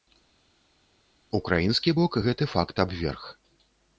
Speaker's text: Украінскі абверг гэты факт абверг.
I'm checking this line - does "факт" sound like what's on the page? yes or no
yes